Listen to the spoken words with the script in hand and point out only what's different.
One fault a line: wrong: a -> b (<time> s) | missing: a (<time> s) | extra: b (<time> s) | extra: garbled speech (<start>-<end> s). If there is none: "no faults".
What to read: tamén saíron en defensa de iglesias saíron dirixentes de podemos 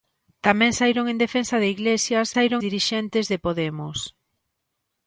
no faults